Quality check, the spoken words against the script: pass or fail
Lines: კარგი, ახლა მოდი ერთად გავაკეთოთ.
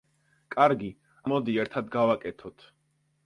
fail